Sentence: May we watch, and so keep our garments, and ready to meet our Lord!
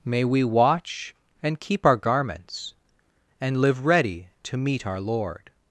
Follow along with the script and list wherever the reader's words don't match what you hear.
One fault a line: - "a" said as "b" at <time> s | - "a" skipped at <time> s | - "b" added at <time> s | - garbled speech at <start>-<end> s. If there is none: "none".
- "so" skipped at 1.6 s
- "live" added at 3.6 s